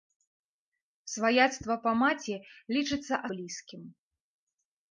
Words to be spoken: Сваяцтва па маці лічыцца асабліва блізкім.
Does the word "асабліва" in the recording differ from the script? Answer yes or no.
yes